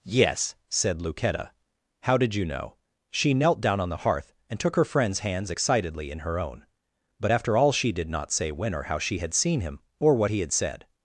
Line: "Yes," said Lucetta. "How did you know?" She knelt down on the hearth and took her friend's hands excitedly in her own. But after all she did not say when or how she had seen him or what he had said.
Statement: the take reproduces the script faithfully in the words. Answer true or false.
true